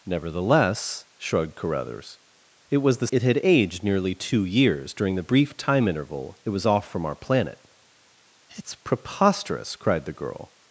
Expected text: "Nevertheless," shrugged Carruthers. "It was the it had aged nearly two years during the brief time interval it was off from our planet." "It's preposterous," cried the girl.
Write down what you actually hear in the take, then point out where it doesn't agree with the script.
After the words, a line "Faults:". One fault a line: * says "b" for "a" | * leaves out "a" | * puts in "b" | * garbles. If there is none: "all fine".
"Nevertheless," shrugged Carruthers. "It was the it had aged nearly two years during the brief time interval it was off from our planet." "It's preposterous," cried the girl.
Faults:
all fine